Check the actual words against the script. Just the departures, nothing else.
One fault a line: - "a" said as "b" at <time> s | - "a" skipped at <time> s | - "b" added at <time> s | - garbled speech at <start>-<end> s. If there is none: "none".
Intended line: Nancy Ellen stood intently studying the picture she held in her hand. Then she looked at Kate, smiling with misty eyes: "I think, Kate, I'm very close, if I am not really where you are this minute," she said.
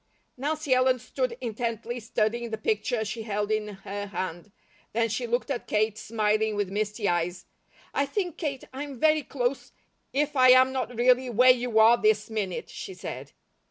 none